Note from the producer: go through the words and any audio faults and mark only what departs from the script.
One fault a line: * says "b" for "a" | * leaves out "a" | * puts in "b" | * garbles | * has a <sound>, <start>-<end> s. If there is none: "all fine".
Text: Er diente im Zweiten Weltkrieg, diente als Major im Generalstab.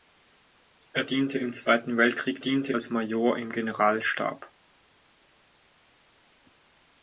all fine